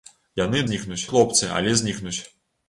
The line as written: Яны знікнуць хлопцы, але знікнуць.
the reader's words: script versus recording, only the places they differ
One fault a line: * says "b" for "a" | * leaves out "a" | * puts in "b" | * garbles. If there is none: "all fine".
all fine